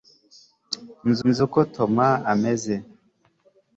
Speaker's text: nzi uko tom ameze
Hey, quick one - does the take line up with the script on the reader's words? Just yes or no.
no